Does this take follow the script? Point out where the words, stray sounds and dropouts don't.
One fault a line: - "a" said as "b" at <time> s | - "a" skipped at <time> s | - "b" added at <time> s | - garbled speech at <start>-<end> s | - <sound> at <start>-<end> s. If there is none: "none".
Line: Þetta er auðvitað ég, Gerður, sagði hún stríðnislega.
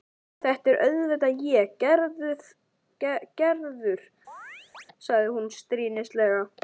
- chirp at 4.3-4.9 s